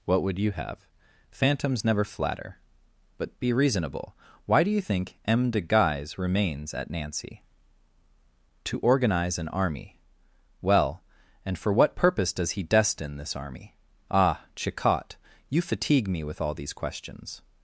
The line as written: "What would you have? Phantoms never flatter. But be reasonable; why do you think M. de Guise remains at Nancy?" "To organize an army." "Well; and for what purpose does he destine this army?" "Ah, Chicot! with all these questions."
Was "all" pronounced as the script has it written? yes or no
yes